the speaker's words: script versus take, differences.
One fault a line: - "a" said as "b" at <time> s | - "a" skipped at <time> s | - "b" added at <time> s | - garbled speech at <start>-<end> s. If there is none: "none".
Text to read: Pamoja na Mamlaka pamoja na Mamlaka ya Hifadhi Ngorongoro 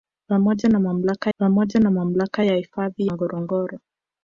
none